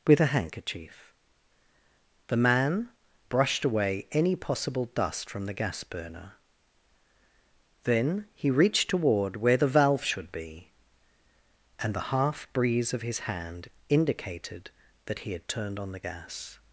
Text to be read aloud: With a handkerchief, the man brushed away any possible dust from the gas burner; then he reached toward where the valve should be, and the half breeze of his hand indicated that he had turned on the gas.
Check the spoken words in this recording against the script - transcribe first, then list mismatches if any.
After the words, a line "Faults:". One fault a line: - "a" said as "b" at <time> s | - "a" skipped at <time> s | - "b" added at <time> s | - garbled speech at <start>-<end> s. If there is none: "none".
With a handkerchief, the man brushed away any possible dust from the gas burner; then he reached toward where the valve should be, and the half breeze of his hand indicated that he had turned on the gas.
Faults:
none